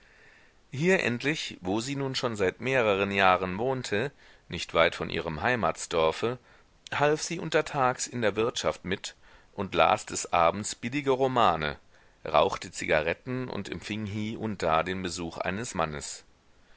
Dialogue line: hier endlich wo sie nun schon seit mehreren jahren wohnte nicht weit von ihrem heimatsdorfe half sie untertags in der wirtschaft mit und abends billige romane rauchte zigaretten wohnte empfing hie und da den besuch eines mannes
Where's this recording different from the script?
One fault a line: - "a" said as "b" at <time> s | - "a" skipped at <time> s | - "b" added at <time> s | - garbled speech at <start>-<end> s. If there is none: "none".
- "las des" added at 9.7 s
- "wohnte" said as "und" at 13.5 s